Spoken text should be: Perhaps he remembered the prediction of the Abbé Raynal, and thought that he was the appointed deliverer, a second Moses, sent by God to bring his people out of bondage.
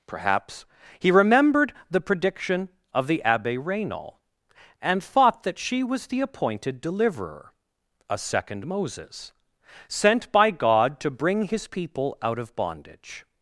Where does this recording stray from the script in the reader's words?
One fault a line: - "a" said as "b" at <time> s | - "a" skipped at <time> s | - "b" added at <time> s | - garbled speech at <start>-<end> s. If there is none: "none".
- "he" said as "she" at 5.6 s